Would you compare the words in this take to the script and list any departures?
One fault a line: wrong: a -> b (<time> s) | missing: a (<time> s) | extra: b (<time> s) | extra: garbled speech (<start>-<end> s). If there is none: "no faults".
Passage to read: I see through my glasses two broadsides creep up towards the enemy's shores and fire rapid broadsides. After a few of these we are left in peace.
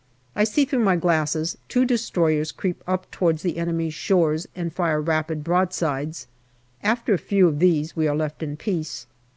wrong: broadsides -> destroyers (1.8 s)